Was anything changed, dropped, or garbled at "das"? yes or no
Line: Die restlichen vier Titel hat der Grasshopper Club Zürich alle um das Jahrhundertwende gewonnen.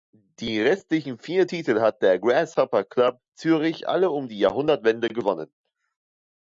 yes